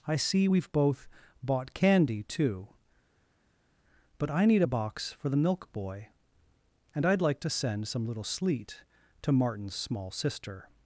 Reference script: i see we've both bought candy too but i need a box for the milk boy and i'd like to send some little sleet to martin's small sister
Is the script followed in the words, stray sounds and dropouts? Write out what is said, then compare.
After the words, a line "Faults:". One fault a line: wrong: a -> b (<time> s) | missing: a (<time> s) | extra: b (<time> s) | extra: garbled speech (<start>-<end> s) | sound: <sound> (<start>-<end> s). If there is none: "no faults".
i see we've both bought candy too but i need a box for the milk boy and i'd like to send some little sleet to martin's small sister
Faults:
no faults